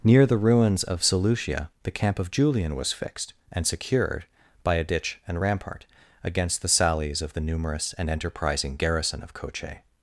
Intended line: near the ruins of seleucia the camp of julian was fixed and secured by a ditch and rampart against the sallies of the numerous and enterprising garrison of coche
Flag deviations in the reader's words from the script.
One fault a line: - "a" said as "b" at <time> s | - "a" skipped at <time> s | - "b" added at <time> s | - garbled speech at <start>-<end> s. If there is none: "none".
none